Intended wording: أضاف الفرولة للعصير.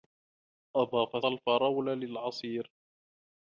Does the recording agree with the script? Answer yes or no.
yes